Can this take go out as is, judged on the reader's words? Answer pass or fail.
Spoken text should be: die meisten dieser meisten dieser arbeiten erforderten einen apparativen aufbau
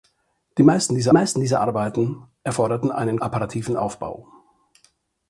pass